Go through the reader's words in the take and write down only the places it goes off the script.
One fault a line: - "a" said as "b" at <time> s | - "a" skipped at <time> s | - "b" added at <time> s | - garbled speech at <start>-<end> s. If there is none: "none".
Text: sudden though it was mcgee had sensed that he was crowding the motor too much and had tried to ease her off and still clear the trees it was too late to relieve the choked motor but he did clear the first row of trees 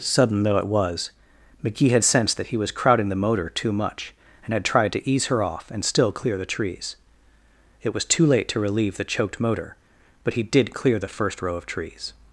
none